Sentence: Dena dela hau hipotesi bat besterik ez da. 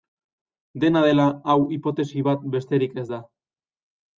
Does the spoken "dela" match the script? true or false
true